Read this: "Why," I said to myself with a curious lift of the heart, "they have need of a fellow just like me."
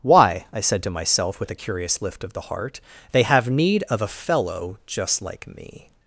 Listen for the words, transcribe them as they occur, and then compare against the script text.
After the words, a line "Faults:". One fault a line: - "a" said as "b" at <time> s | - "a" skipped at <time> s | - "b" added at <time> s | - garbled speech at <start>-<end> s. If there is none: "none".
"Why," I said to myself with a curious lift of the heart, "they have need of a fellow just like me."
Faults:
none